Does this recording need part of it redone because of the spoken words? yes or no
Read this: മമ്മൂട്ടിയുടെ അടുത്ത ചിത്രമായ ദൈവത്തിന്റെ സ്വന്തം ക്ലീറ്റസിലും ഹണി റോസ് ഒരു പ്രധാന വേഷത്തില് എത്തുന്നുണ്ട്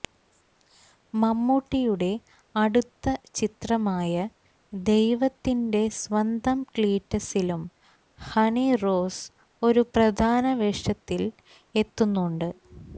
no